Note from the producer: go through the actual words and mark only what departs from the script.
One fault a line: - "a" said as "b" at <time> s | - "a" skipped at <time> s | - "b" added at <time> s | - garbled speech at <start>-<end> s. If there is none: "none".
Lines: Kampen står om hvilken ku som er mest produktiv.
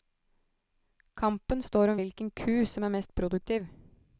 none